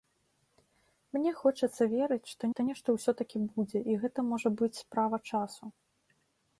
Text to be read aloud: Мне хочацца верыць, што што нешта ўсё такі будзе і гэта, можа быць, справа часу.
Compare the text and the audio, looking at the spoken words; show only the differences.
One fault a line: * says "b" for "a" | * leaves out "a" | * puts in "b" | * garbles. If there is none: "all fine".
all fine